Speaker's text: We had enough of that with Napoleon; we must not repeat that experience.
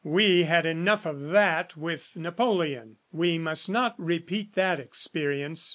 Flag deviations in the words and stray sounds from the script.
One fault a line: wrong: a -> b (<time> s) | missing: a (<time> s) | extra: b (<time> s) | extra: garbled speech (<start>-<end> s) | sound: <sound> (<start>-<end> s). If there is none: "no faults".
no faults